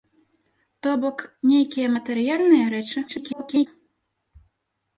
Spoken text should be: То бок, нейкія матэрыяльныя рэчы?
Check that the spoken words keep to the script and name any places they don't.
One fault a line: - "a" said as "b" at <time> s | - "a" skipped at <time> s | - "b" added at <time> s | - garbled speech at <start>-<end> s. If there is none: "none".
- garbled speech at 3.1-3.7 s